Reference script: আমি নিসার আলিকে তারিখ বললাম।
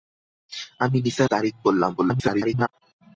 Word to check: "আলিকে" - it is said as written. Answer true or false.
false